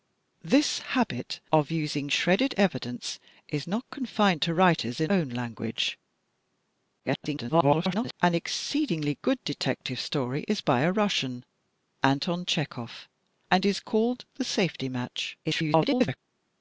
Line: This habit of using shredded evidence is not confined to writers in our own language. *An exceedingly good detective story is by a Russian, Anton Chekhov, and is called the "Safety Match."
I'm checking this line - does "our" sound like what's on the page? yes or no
no